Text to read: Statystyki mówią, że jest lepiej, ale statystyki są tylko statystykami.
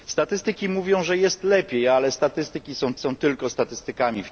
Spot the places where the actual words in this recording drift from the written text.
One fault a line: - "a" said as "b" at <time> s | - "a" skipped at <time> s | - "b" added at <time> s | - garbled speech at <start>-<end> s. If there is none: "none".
- "są" added at 3.0 s